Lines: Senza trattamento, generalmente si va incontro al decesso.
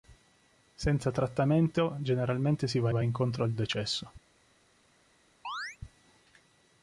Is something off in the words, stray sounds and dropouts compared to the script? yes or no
yes